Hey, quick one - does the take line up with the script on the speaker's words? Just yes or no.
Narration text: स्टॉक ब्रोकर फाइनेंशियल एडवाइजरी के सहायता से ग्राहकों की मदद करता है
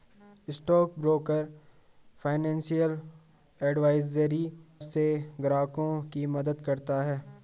no